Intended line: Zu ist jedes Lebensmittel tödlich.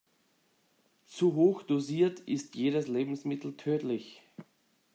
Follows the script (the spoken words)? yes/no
no